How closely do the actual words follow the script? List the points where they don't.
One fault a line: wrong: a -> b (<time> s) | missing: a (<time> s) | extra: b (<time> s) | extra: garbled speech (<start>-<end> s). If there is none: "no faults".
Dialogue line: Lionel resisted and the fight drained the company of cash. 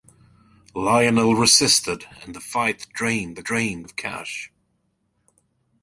wrong: company -> drained (3.4 s)